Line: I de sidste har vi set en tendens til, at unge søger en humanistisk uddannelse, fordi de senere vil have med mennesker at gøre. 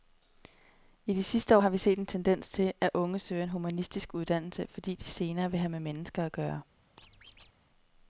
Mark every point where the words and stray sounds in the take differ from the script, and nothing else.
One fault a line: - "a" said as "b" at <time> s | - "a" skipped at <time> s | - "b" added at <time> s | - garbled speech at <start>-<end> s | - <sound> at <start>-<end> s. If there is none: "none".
- squeak at 7.0-7.5 s